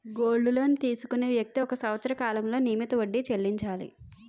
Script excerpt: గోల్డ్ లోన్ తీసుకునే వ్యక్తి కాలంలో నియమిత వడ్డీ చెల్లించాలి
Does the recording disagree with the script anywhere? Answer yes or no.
yes